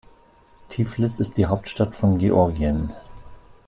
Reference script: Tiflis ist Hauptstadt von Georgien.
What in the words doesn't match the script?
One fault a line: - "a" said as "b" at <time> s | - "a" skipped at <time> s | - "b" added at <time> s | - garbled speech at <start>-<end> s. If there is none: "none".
- "die" added at 1.4 s